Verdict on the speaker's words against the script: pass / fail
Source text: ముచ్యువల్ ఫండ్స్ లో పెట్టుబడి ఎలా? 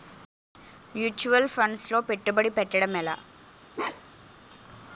fail